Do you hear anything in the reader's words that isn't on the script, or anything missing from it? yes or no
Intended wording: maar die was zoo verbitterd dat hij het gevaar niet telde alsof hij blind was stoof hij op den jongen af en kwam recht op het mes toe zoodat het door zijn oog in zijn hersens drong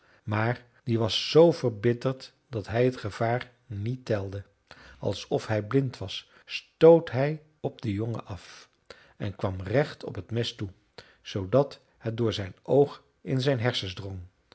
no